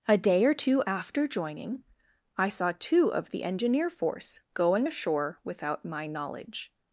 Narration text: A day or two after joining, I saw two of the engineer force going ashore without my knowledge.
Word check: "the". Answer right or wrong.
right